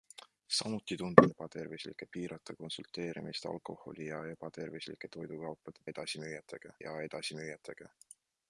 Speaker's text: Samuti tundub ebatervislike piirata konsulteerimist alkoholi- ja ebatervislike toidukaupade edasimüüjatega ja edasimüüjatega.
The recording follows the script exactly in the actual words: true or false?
true